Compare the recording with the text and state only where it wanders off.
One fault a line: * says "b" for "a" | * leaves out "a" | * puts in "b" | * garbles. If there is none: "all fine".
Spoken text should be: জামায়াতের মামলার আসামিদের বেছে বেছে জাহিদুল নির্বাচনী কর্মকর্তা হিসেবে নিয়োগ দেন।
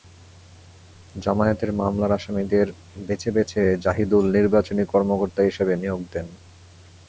all fine